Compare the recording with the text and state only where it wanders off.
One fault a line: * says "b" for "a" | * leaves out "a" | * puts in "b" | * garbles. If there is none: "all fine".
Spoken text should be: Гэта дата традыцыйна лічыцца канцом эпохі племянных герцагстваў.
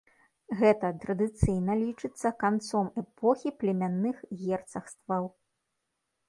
* leaves out "дата"